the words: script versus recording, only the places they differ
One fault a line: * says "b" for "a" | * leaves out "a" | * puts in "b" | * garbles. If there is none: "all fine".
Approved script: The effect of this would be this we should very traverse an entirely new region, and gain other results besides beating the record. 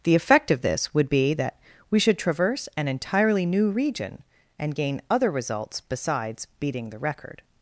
* says "that" for "this"
* leaves out "very"